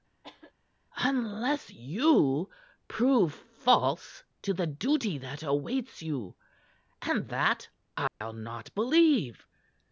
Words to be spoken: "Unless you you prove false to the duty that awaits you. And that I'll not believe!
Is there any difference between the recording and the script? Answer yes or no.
yes